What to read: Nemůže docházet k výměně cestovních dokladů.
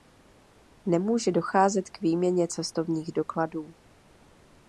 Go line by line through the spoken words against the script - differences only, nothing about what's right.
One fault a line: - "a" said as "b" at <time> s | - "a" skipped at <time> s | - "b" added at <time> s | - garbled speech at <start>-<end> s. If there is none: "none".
none